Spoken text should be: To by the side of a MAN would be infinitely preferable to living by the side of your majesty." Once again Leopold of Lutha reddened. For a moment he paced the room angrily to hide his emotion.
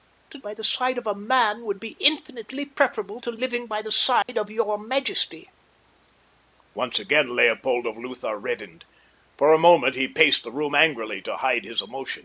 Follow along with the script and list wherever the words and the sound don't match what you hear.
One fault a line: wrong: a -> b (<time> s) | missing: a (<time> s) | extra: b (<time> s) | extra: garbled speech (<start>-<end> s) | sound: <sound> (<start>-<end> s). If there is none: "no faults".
sound: dropout (4.2-4.3 s)